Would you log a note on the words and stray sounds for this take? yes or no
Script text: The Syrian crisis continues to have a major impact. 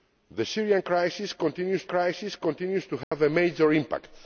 yes